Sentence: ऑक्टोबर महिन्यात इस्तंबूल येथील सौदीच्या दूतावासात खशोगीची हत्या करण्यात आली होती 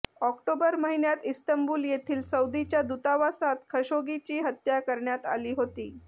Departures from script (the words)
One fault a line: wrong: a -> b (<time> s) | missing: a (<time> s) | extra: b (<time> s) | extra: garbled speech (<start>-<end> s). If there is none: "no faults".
no faults